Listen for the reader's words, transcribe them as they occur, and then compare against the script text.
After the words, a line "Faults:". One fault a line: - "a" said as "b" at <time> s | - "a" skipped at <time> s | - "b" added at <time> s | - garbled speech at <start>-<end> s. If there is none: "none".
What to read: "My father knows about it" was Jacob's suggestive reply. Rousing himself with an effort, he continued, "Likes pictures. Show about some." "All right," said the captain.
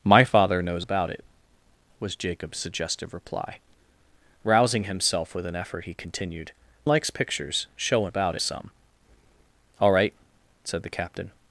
"My father knows about it" was Jacob's suggestive reply. Rousing himself with an effort, he continued, "Likes pictures. Show about some." "All right," said the captain.
Faults:
none